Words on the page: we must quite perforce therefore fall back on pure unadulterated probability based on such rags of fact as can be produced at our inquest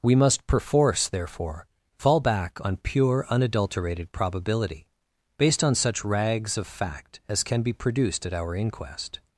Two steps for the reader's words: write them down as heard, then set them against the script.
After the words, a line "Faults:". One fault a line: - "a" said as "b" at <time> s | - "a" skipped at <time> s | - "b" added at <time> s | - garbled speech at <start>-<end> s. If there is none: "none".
we must perforce therefore fall back on pure unadulterated probability based on such rags of fact as can be produced at our inquest
Faults:
- "quite" skipped at 0.5 s